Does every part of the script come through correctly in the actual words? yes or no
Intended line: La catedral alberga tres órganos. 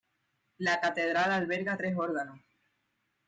yes